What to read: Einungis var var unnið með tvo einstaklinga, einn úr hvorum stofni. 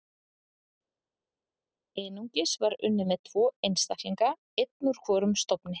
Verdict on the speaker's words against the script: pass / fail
fail